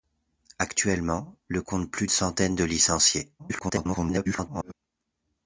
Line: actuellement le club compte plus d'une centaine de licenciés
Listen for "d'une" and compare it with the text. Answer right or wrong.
wrong